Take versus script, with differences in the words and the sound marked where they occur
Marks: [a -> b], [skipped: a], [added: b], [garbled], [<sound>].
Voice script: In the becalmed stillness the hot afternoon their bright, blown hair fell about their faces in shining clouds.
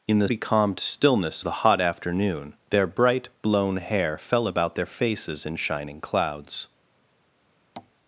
In the becalmed stillness the hot afternoon their bright, blown hair fell about their faces in shining clouds. [tap]